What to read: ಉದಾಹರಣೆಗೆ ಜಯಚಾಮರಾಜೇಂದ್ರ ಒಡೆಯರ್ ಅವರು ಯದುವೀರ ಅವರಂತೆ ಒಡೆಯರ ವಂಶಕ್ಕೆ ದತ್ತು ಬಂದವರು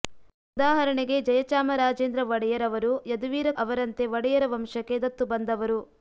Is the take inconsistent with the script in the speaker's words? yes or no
no